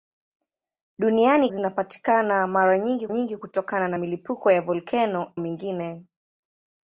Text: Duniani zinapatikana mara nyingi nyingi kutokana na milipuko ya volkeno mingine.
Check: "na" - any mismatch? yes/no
no